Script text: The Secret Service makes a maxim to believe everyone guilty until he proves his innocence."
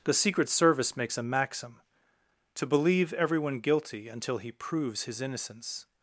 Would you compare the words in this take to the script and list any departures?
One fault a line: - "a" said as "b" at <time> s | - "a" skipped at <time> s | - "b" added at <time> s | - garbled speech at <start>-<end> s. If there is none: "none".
none